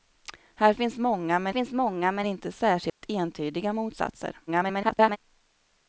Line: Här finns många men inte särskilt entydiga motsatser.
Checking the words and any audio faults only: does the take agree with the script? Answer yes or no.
no